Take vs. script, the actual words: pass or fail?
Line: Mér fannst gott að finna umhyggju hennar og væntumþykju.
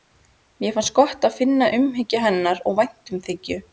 pass